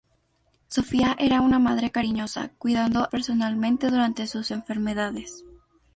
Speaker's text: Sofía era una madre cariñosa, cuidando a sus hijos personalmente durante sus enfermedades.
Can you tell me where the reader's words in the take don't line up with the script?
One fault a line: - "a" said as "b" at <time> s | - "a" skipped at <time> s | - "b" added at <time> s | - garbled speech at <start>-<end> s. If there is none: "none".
- "a sus hijos" skipped at 3.0 s